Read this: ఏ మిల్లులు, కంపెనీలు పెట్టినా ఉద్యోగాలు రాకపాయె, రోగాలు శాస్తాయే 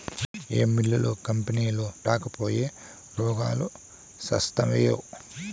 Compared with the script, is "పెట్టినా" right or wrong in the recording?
wrong